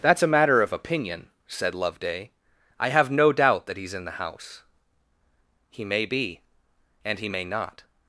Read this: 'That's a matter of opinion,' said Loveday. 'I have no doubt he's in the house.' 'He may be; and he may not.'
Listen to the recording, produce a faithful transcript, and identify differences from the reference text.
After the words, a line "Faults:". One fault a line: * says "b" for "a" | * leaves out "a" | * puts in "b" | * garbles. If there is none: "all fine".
'That's a matter of opinion,' said Loveday. 'I have no doubt that he's in the house.' 'He may be; and he may not.'
Faults:
* puts in "that"